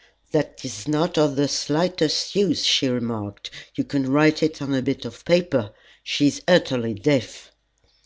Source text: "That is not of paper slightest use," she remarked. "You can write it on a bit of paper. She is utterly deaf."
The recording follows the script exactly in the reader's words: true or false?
false